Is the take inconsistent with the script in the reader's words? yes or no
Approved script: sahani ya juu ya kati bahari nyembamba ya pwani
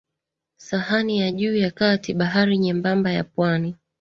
no